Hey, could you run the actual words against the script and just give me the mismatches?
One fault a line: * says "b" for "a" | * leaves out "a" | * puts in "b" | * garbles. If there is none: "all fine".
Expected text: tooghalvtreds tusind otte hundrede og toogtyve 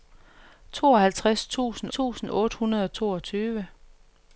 * puts in "tusind"